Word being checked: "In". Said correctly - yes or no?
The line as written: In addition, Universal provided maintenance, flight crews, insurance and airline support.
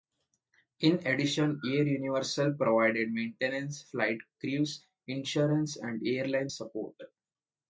yes